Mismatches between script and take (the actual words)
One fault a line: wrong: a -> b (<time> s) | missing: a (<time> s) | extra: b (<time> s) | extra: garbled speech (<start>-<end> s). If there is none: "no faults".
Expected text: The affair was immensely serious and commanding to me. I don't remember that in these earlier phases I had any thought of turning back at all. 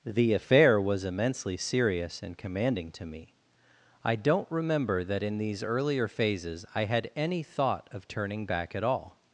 no faults